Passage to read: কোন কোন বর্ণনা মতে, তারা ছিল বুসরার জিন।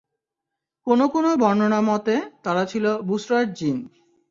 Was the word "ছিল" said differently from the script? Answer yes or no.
no